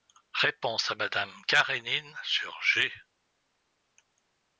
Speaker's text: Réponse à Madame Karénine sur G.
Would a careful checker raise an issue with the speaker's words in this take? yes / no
no